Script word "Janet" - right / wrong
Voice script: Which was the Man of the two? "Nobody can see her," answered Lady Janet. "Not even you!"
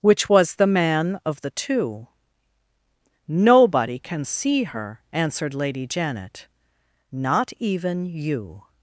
right